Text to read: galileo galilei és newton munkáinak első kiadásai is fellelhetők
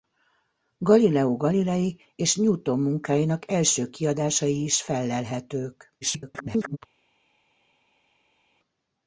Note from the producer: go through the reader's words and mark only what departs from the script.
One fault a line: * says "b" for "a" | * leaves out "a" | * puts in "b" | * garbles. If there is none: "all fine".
* garbles